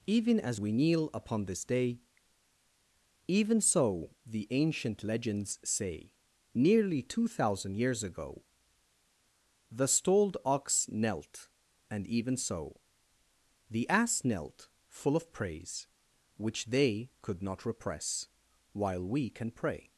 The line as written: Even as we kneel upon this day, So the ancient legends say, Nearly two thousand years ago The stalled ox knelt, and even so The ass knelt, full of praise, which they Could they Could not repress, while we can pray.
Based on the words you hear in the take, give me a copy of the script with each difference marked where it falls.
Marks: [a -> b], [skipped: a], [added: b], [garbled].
Even as we kneel upon this day, [added: Even] So the ancient legends say, Nearly two thousand years ago The stalled ox knelt, and even so The ass knelt, full of praise, which they Could [skipped: they Could] not repress, while we can pray.